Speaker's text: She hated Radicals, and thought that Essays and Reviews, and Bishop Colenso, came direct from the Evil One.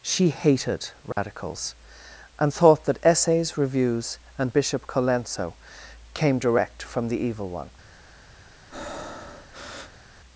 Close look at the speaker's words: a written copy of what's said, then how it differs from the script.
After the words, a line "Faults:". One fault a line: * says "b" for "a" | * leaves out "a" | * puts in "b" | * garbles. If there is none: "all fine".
She hated Radicals, and thought that Essays Reviews, and Bishop Colenso, came direct from the Evil One.
Faults:
* leaves out "and"